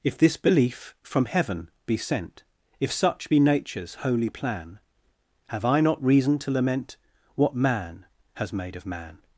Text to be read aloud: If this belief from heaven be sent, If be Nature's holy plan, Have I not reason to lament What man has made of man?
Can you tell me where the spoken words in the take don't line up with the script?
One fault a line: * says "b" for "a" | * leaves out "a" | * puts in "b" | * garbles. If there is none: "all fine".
* puts in "such"